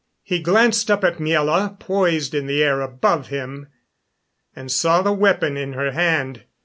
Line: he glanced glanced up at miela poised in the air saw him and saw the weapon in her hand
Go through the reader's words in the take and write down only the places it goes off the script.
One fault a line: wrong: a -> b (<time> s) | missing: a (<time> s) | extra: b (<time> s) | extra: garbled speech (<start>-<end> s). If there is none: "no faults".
missing: glanced (0.9 s)
wrong: saw -> above (2.8 s)